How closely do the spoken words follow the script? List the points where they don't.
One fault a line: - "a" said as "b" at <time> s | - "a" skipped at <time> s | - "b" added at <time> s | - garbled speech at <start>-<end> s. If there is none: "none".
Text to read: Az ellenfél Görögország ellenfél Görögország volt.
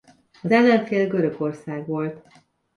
- "ellenfél Görögország" skipped at 1.9 s